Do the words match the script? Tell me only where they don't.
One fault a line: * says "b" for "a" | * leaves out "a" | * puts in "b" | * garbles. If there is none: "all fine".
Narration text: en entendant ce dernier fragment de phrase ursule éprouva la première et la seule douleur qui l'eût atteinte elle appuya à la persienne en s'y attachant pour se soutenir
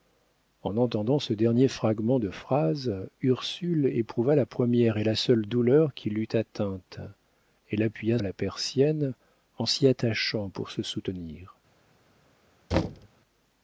all fine